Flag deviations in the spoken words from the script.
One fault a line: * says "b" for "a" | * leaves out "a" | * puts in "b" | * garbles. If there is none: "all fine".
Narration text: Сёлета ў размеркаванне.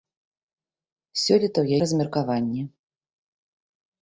all fine